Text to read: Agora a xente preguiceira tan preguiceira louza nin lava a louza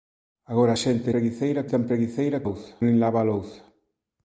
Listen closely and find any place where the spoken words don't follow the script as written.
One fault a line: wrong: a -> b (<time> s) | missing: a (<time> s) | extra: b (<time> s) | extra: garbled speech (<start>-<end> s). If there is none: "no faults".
no faults